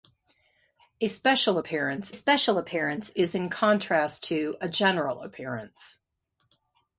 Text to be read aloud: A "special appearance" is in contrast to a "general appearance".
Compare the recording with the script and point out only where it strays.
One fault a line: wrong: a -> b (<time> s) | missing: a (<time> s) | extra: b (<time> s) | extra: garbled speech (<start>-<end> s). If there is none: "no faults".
extra: special appearance (2.1 s)